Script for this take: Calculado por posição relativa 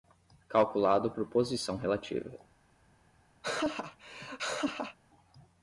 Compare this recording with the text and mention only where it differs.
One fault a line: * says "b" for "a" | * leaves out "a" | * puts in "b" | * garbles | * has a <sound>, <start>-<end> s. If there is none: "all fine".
* has a laugh, 3.4-5.0 s